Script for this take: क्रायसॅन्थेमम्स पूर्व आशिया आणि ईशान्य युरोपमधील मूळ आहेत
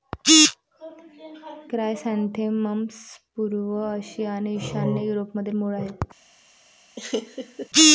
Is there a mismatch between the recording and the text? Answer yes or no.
no